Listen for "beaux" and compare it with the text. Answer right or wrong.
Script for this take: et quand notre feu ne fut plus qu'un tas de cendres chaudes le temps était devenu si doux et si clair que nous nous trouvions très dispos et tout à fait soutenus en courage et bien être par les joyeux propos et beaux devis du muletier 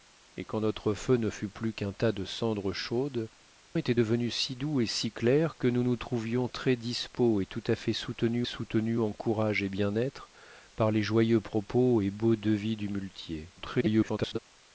right